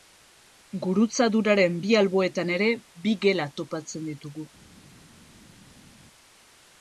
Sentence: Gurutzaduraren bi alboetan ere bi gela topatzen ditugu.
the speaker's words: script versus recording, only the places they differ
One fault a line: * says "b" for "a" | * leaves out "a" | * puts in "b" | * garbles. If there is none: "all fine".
all fine